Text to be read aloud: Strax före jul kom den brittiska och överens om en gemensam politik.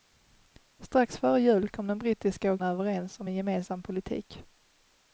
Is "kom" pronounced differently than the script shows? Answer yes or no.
no